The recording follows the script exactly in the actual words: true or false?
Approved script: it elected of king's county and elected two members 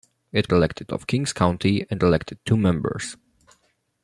true